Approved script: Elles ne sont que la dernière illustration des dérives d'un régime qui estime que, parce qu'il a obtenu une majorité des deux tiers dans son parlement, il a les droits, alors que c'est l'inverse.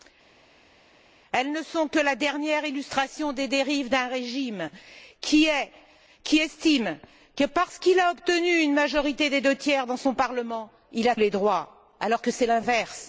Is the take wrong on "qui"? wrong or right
right